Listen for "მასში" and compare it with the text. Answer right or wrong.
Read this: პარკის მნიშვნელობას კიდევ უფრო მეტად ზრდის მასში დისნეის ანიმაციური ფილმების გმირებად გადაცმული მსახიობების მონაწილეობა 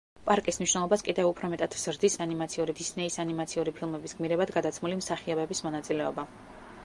wrong